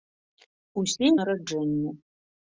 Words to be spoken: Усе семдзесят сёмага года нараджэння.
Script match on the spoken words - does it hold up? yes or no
no